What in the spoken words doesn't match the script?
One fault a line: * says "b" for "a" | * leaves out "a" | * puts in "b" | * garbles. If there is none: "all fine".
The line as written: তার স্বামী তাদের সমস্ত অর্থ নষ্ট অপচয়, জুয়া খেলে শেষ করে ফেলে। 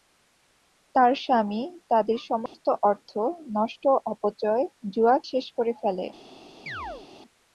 * leaves out "খেলে"